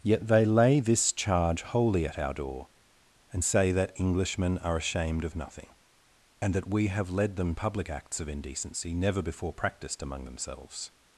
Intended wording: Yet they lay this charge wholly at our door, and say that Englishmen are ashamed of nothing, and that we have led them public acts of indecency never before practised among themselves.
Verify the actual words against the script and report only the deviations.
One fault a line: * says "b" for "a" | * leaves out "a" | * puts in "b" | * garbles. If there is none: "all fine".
all fine